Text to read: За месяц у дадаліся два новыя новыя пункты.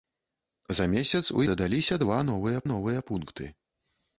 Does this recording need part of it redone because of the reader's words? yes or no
no